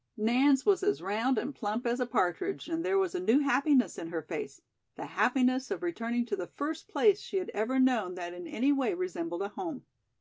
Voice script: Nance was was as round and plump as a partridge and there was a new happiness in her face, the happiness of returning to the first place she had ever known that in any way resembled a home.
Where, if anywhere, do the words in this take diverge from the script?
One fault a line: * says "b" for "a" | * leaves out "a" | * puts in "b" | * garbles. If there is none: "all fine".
* leaves out "was"